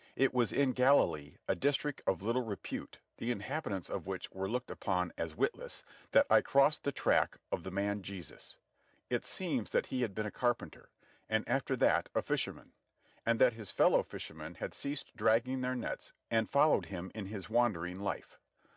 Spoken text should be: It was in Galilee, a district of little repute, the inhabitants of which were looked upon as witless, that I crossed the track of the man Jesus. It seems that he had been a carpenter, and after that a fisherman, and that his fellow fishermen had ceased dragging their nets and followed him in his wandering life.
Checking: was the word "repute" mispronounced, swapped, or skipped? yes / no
no